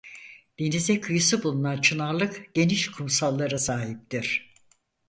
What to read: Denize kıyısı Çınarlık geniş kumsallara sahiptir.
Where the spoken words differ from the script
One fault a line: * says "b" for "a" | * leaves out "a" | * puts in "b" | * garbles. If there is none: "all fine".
* puts in "bulunan"